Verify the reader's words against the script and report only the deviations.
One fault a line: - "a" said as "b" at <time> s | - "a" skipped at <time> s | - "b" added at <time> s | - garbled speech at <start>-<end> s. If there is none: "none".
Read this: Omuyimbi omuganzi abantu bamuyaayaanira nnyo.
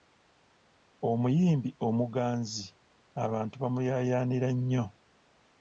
none